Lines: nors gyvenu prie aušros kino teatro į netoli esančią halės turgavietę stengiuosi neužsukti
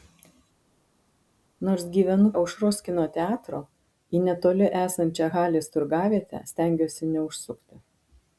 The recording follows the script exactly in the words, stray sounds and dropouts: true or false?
false